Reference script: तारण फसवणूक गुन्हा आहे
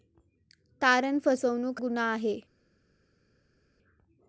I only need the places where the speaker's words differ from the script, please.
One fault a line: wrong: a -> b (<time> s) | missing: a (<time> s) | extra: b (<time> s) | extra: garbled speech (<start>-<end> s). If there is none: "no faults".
no faults